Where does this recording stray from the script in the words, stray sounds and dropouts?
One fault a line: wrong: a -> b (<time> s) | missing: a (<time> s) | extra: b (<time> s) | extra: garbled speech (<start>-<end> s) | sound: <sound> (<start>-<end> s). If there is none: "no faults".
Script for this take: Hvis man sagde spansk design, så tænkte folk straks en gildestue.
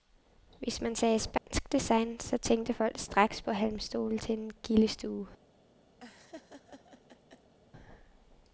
sound: dropout (1.4-1.5 s)
extra: på halmstole til (3.4 s)
sound: laugh (6.0-7.6 s)